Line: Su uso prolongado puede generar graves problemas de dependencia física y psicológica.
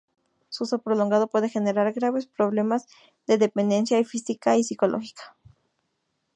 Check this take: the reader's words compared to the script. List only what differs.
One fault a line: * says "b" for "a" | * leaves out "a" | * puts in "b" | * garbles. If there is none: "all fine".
all fine